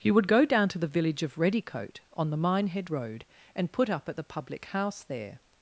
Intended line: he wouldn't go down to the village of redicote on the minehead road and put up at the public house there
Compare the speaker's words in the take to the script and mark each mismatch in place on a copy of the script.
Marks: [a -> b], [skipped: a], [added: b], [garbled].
he [wouldn't -> would] go down to the village of redicote on the minehead road and put up at the public house there